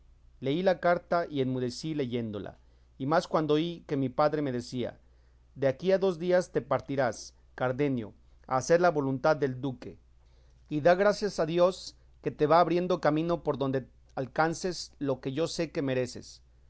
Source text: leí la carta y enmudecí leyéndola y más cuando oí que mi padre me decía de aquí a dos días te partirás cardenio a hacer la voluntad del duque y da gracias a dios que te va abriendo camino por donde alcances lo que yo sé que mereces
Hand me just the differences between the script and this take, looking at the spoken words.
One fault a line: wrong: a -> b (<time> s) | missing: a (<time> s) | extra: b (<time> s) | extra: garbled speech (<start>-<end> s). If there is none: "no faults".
no faults